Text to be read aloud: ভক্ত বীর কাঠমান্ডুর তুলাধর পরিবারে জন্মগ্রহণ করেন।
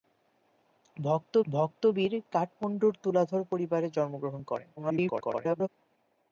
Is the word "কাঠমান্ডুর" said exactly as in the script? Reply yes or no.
yes